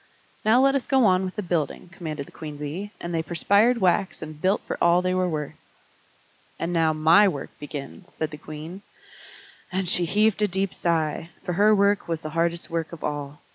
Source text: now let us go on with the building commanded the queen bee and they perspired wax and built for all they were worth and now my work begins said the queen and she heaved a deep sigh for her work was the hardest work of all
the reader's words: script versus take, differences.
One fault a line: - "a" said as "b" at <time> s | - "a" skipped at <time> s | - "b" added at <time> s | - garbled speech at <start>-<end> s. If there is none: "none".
none